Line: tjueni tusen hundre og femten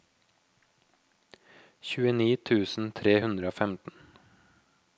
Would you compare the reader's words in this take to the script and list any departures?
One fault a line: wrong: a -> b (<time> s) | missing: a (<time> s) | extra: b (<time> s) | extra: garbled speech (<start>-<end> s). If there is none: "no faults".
extra: tre (3.0 s)